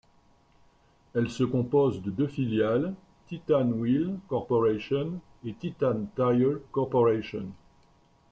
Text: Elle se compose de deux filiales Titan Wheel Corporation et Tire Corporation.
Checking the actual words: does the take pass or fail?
fail